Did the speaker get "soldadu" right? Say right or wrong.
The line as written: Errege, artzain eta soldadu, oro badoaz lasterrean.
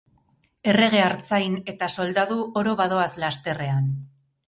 right